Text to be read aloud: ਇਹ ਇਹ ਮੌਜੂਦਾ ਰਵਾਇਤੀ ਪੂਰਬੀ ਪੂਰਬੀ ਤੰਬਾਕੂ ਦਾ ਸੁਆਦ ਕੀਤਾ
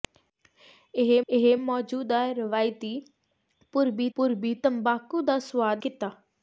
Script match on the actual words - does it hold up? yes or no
yes